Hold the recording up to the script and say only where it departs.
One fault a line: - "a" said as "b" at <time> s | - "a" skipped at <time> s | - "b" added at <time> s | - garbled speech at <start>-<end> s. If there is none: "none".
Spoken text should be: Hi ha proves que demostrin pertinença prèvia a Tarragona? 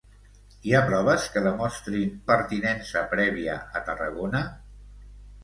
none